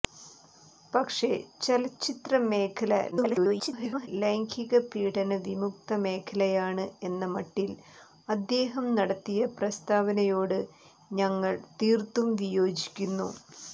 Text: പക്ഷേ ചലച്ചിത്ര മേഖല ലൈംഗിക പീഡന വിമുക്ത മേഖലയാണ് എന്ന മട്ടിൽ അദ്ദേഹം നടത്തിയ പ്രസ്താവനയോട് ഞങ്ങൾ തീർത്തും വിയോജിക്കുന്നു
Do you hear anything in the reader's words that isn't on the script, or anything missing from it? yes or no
yes